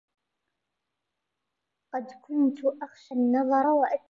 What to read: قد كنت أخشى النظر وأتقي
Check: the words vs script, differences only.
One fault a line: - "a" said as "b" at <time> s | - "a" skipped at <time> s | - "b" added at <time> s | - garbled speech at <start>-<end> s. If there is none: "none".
none